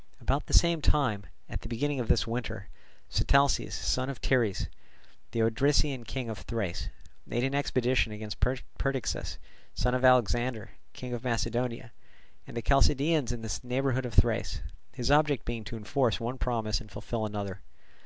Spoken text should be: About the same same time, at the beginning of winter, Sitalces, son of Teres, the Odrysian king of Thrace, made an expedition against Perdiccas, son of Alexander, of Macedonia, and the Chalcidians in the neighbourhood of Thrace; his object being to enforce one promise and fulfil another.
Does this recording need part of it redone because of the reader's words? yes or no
yes